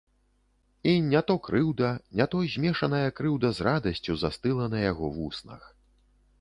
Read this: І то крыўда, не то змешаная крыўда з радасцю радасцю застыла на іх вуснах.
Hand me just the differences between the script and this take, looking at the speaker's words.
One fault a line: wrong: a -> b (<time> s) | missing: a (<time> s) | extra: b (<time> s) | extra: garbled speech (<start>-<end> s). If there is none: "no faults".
extra: не (1.1 s)
missing: радасцю (4.2 s)
wrong: іх -> яго (4.9 s)